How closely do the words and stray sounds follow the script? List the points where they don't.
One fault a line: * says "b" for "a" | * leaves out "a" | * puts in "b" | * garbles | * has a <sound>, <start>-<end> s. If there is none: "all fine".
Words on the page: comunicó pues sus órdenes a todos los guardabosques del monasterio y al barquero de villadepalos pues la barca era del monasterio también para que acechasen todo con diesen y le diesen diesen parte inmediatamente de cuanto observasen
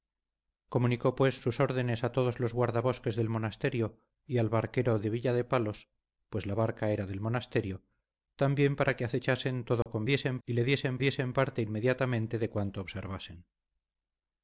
* has a dropout, 9.8-9.9 s